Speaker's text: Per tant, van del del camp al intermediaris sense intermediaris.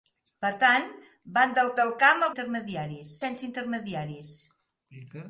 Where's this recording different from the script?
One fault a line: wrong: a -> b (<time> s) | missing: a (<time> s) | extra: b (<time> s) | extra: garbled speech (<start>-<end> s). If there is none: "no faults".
no faults